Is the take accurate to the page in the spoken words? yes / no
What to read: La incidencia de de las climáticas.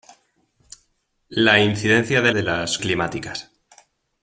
yes